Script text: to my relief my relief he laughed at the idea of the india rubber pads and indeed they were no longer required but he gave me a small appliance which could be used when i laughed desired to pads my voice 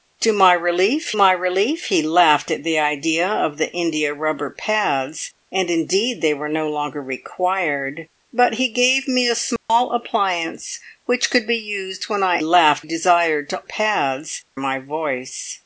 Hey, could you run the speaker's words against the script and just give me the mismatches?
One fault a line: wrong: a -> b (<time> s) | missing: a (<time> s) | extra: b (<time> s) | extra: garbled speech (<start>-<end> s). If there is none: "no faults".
no faults